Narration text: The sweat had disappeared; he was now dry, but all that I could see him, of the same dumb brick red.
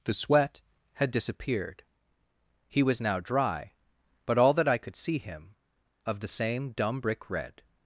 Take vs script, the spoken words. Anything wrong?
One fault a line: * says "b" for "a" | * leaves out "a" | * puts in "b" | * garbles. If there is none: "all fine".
all fine